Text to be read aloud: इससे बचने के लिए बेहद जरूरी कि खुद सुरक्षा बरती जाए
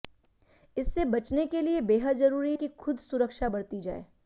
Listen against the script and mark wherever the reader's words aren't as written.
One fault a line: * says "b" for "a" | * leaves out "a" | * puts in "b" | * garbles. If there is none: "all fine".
all fine